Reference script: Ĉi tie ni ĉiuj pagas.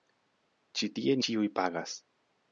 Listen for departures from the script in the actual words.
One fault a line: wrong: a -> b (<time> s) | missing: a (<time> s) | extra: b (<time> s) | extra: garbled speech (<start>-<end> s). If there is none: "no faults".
missing: ni (1.2 s)